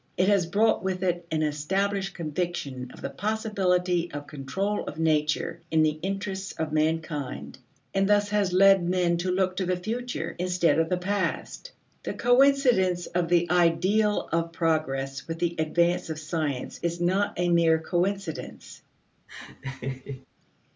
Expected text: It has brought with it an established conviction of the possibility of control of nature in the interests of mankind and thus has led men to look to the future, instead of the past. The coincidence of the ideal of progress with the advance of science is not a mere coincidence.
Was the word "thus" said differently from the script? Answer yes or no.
no